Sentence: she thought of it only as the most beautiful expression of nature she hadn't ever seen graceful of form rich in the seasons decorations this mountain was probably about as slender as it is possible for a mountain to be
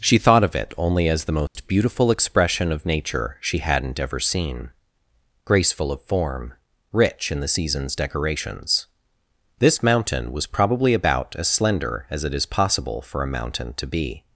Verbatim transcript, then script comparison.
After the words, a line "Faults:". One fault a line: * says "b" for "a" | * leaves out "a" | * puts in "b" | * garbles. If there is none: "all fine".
she thought of it only as the most beautiful expression of nature she hadn't ever seen graceful of form rich in the seasons decorations this mountain was probably about as slender as it is possible for a mountain to be
Faults:
all fine